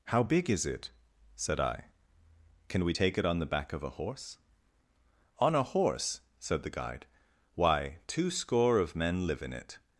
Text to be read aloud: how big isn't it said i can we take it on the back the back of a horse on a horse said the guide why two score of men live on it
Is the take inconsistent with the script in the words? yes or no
yes